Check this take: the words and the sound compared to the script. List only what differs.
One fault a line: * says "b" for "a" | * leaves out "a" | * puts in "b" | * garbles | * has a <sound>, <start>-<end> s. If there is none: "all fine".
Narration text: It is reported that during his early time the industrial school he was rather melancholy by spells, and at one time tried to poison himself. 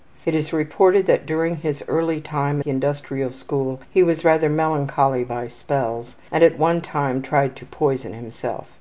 all fine